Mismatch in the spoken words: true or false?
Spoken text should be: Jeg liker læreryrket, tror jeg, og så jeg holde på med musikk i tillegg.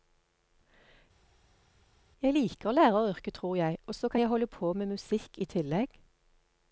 true